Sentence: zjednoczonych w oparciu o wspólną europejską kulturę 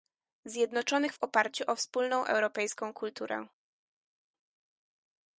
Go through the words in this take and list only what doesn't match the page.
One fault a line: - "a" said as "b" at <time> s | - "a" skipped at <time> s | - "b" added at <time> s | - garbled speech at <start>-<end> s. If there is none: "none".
none